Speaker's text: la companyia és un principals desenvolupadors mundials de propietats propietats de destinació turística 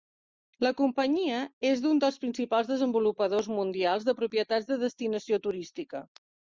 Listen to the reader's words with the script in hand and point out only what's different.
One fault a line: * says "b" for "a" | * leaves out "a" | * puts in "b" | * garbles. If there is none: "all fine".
* puts in "dels"
* leaves out "propietats"